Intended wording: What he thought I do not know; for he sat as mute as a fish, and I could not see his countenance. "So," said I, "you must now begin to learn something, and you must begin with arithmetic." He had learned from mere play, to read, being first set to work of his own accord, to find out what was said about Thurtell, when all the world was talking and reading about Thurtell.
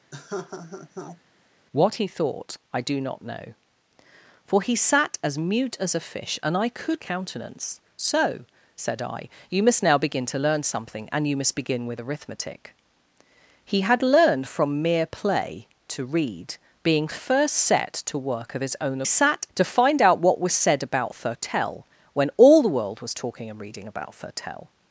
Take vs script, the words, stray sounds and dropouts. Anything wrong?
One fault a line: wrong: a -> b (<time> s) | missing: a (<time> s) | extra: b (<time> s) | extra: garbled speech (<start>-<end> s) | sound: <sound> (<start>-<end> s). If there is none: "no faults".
sound: laugh (0.1-1.2 s)
missing: not see his (7.0 s)
wrong: accord -> sat (19.0 s)